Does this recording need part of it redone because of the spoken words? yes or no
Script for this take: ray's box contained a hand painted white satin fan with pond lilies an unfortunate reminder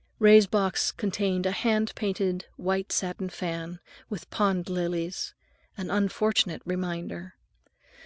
no